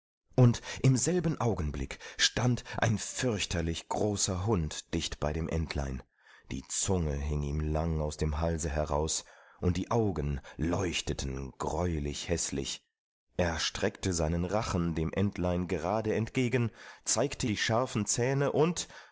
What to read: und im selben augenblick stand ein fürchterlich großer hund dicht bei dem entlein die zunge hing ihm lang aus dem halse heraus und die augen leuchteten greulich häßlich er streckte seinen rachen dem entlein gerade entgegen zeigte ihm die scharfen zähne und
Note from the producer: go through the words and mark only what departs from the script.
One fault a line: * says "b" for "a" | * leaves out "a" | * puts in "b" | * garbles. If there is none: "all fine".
* leaves out "ihm"